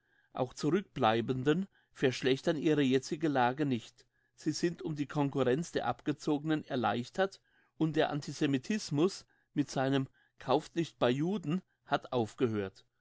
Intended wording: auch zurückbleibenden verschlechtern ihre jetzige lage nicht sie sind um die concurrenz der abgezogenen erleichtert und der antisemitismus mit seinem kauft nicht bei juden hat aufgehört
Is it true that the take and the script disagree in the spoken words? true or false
false